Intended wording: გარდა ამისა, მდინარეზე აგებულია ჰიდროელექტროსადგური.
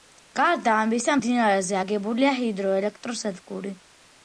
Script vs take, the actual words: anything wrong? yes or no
no